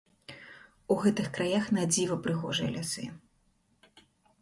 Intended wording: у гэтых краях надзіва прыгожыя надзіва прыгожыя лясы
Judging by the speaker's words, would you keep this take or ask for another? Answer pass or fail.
fail